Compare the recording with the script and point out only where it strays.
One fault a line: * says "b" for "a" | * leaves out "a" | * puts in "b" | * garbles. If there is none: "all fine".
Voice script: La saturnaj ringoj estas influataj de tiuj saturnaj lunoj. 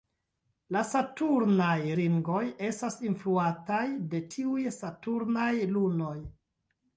all fine